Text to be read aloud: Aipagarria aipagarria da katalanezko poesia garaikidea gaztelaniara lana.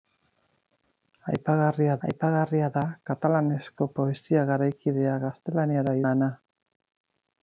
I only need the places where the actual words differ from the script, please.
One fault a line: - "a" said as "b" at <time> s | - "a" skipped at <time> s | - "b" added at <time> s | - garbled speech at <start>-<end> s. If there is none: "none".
none